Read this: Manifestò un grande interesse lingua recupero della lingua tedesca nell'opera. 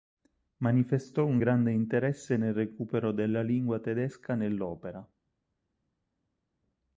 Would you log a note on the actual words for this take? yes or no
yes